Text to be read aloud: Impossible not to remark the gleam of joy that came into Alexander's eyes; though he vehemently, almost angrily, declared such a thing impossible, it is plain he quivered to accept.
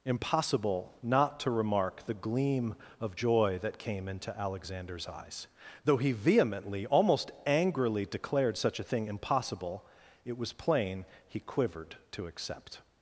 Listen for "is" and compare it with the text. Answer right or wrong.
wrong